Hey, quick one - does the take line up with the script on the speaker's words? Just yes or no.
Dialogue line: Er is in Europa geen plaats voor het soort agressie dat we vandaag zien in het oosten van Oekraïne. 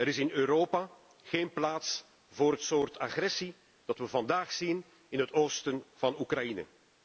yes